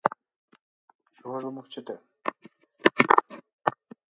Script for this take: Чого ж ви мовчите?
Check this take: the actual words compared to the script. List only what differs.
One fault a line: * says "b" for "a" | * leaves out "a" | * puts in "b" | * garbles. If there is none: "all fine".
all fine